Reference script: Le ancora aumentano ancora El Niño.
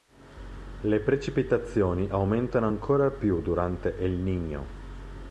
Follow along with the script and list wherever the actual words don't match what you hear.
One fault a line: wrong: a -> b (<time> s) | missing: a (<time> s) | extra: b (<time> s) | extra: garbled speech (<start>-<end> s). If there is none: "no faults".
wrong: ancora -> precipitazioni (1.0 s)
extra: più durante (3.1 s)